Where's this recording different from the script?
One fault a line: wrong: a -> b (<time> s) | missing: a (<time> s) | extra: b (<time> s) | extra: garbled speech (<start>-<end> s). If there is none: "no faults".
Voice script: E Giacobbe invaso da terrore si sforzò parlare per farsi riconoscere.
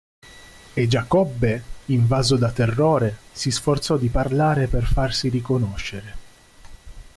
extra: di (4.0 s)